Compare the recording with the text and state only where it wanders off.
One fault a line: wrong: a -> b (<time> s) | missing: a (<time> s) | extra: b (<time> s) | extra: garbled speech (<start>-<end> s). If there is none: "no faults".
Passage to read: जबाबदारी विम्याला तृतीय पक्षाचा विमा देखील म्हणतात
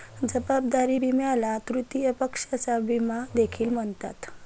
no faults